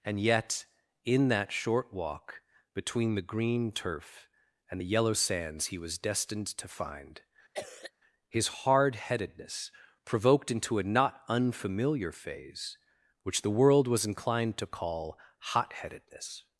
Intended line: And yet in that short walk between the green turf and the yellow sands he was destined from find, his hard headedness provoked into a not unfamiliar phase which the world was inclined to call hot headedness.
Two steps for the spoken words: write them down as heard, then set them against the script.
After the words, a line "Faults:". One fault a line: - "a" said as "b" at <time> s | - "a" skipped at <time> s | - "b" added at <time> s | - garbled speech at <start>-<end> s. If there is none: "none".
And yet in that short walk between the green turf and the yellow sands he was destined to find, his hard headedness provoked into a not unfamiliar phase which the world was inclined to call hot headedness.
Faults:
- "from" said as "to" at 6.5 s